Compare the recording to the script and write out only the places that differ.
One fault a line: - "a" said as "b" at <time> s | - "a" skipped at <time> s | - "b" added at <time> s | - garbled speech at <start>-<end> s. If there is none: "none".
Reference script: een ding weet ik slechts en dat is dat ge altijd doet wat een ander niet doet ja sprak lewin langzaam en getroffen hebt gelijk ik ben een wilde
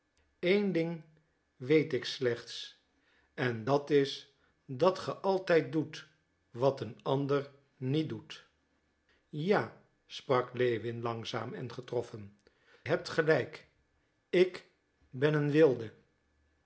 none